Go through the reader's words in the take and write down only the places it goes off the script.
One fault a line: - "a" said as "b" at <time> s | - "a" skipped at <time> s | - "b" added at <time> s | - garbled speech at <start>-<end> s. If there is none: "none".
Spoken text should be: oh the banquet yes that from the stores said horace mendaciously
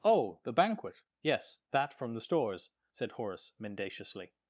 none